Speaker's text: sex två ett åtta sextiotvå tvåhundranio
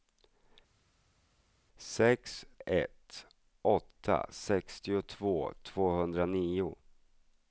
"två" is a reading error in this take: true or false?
true